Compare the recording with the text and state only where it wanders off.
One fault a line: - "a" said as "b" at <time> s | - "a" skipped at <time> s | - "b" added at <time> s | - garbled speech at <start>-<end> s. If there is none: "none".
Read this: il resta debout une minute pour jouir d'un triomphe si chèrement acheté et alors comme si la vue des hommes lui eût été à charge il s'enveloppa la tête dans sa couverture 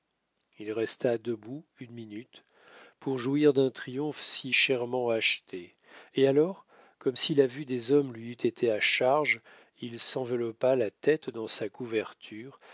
none